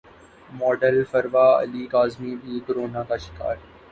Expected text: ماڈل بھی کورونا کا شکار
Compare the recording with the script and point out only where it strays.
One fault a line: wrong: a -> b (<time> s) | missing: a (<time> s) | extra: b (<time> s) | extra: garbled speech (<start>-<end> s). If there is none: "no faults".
extra: فروا علی کاظمی (1.1 s)